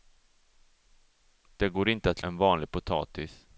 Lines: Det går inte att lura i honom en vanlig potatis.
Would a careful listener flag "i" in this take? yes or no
yes